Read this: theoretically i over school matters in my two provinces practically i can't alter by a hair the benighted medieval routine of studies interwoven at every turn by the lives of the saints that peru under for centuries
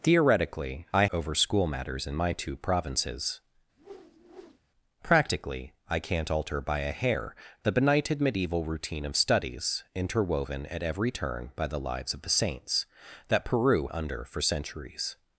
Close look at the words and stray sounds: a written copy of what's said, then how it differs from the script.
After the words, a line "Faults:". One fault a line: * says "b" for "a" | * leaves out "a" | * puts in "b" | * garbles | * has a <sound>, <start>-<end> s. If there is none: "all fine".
theoretically i over school matters in my two provinces practically i can't alter by a hair the benighted medieval routine of studies interwoven at every turn by the lives of the saints that peru under for centuries
Faults:
* has a whoosh, 3.8-4.6 s